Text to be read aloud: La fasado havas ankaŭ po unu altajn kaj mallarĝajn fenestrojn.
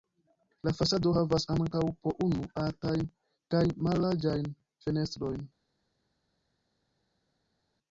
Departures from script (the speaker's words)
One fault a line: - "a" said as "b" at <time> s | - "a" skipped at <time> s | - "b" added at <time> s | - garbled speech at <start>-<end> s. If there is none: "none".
none